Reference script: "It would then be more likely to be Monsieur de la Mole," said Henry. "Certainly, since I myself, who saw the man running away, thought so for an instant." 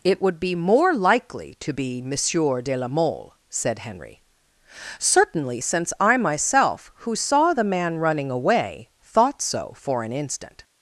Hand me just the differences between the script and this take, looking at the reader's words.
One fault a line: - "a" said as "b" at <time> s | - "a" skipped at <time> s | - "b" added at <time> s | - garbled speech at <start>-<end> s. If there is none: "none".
- "then" skipped at 0.4 s